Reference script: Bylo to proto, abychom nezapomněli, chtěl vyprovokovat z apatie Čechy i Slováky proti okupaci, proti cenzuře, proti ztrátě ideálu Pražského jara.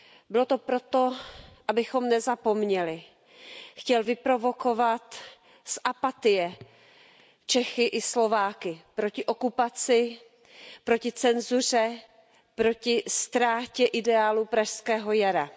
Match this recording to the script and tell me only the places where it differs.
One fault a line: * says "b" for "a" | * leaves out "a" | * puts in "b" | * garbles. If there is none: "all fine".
all fine